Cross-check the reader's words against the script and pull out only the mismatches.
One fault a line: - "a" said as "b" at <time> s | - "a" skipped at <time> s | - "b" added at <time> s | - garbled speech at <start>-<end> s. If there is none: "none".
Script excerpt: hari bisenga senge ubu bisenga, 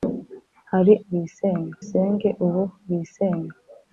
none